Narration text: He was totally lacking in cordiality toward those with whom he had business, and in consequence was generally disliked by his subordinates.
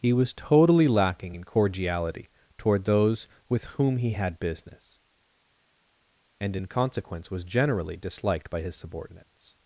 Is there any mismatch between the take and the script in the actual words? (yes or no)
no